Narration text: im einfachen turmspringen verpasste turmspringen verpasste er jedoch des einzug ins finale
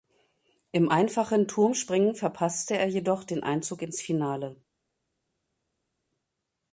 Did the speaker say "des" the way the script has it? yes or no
no